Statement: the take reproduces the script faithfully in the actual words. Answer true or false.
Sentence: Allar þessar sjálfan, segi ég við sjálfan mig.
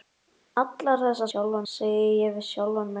true